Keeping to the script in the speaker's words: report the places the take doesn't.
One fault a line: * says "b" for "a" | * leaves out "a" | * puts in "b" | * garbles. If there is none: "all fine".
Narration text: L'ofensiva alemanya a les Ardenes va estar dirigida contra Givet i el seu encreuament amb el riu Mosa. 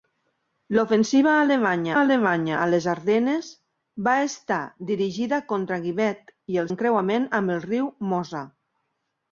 * puts in "alemanya"
* leaves out "seu"